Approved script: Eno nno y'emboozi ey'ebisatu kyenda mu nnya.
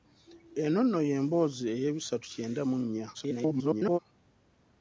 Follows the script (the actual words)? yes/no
no